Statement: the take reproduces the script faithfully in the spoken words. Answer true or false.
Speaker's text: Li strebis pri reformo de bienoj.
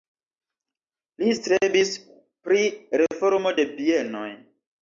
true